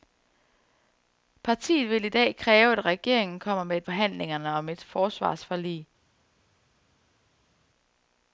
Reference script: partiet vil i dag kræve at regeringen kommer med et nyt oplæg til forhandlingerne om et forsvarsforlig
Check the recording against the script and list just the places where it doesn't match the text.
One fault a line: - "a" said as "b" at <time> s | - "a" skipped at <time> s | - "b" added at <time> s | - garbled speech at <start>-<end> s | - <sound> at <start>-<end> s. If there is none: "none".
- "nyt oplæg til" skipped at 3.9 s